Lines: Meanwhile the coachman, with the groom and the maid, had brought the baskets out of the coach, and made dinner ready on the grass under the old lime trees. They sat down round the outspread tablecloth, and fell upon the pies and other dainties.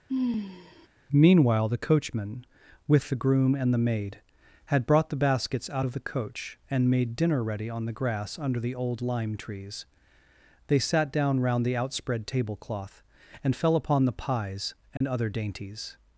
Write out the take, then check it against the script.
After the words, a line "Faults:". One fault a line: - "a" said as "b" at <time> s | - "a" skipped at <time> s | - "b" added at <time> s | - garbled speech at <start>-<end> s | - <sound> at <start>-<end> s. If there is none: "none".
Meanwhile the coachman, with the groom and the maid, had brought the baskets out of the coach, and made dinner ready on the grass under the old lime trees. They sat down round the outspread tablecloth, and fell upon the pies and other dainties.
Faults:
- sigh at 0.1-0.9 s
- dropout at 15.0-15.0 s